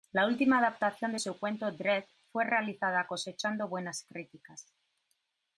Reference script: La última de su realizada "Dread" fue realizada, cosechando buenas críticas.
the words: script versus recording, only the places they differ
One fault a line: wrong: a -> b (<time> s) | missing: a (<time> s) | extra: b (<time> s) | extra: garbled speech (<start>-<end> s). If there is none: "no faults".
extra: adaptación (0.6 s)
wrong: realizada -> cuento (1.4 s)